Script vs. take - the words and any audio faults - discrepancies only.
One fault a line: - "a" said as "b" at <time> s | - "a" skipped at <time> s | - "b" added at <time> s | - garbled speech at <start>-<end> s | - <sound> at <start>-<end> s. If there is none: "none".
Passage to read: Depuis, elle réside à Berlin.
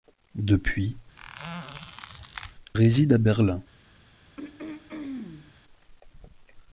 - "elle" skipped at 0.9 s
- squeak at 1.2-2.5 s
- throat clearing at 4.4-5.5 s